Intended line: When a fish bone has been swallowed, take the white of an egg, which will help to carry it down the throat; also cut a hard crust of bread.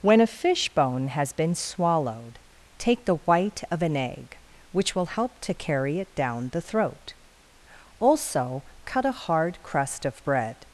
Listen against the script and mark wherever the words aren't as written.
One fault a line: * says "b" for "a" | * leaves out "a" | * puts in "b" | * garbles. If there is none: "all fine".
all fine